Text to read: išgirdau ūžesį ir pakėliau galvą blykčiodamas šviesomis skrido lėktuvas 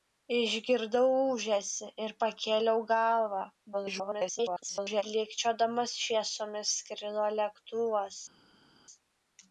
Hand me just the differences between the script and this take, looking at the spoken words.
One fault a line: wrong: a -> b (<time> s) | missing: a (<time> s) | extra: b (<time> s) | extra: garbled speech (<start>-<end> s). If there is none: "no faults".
extra: garbled speech (3.7-5.0 s)